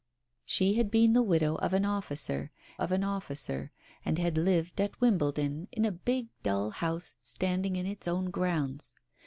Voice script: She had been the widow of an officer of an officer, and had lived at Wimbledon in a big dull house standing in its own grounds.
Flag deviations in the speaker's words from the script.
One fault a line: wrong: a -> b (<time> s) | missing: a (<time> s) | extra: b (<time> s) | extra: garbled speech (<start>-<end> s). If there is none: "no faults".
no faults